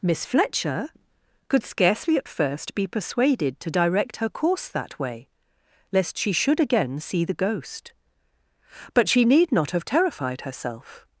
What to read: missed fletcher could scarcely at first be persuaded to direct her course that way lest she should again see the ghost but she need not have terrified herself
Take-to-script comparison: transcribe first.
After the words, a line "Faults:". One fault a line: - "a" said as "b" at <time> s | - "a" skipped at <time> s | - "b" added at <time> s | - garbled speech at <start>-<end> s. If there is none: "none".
miss fletcher could scarcely at first be persuaded to direct her course that way lest she should again see the ghost but she need not have terrified herself
Faults:
- "missed" said as "miss" at 0.0 s